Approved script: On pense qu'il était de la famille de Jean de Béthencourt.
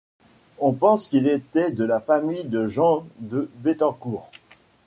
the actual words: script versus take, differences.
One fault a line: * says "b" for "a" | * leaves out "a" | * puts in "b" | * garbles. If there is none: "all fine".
all fine